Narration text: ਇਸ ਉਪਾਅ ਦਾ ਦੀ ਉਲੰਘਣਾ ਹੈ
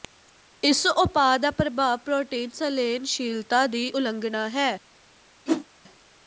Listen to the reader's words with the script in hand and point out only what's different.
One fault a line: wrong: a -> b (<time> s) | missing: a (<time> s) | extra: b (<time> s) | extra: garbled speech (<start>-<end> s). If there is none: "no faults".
extra: ਪ੍ਰਭਾਵ ਪ੍ਰੋਟੀਨ ਸੰਲੇਨਸ਼ੀਲਤਾ (1.5 s)